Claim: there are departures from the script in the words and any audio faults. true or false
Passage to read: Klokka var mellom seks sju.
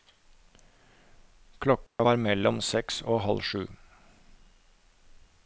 true